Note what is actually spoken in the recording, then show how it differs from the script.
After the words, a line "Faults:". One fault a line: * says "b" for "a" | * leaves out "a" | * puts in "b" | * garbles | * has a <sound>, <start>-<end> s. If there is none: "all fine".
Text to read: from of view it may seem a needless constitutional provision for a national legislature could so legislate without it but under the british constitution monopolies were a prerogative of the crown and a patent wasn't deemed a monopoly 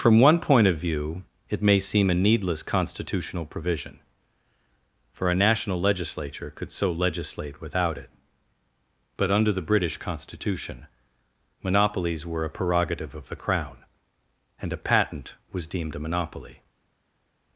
from one point of view it may seem a needless constitutional provision for a national legislature could so legislate without it but under the british constitution monopolies were a prerogative of the crown and a patent was deemed a monopoly
Faults:
* puts in "one point"
* says "was" for "wasn't"